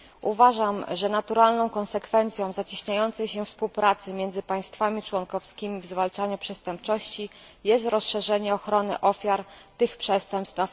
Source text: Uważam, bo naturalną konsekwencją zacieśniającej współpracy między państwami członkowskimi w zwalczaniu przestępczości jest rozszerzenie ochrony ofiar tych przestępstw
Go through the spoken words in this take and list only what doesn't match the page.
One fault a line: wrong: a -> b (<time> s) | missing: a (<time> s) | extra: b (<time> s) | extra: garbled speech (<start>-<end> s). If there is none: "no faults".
wrong: bo -> że (0.9 s)
extra: się (3.3 s)